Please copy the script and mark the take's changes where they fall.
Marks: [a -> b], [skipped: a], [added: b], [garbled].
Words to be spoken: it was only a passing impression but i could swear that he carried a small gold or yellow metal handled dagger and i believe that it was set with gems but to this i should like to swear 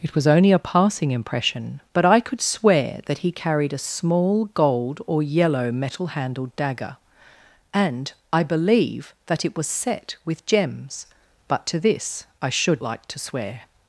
it was only a passing impression but i could swear that he carried a small gold or yellow metal handled dagger and i believe that it was set with gems but to this i should like to swear